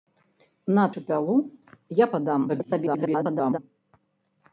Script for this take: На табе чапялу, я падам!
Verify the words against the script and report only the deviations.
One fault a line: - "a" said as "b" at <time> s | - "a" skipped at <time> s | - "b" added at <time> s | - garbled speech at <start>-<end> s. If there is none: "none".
- "табе" skipped at 0.8 s
- garbled speech at 2.5-3.6 s